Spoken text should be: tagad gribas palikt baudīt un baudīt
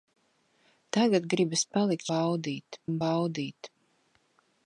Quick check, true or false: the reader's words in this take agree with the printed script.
true